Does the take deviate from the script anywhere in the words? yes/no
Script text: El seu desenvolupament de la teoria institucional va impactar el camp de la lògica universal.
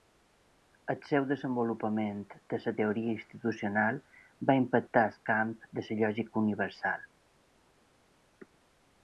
no